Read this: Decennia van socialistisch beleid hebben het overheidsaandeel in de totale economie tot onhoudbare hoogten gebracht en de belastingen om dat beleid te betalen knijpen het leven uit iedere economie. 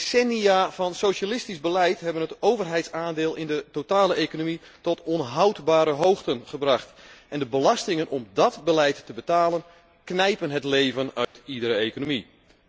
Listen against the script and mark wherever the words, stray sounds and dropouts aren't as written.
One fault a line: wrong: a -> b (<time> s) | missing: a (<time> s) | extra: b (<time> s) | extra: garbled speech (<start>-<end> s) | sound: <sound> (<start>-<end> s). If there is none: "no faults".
sound: dropout (11.2-11.3 s)